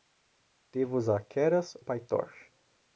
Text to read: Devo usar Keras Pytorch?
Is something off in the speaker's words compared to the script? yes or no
no